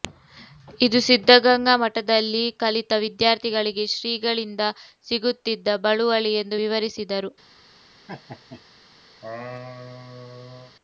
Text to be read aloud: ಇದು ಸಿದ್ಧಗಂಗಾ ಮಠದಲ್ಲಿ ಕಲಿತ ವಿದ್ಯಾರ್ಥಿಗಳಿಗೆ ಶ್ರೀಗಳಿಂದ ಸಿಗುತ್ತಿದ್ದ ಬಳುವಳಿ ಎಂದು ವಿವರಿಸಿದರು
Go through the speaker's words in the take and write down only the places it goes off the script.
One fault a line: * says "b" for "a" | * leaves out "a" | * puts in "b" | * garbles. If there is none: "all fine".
all fine